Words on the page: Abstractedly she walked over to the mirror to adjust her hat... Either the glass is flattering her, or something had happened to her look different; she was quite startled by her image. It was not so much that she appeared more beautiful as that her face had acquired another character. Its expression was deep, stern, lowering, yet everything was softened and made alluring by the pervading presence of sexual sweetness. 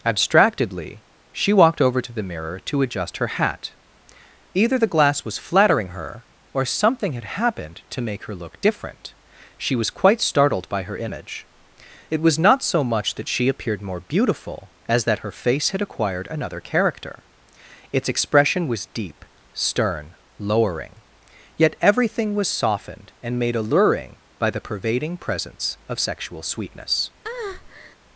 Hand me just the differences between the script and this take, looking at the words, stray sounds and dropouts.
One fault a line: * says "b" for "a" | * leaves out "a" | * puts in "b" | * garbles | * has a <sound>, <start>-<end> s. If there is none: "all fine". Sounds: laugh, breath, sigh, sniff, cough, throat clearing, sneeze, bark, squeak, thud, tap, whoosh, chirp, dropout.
* says "was" for "is"
* puts in "make"
* has a breath, 27.2-28.0 s